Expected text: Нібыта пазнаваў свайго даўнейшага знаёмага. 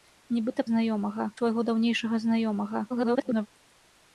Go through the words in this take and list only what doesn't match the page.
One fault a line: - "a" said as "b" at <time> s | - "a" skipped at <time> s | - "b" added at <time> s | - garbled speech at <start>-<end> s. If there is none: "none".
- "пазнаваў" said as "знаёмага" at 0.7 s
- garbled speech at 2.9-3.5 s